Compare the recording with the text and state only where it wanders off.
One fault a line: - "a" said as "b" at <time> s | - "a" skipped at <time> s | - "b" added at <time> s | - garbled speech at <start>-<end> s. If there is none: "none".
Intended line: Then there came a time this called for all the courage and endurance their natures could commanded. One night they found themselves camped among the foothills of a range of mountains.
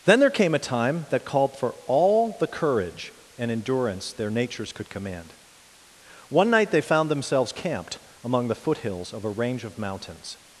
- "this" said as "that" at 1.1 s
- "commanded" said as "command" at 4.9 s